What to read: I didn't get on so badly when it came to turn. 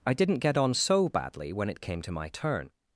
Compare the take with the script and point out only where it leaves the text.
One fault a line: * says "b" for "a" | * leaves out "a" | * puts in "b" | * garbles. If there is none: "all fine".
* puts in "my"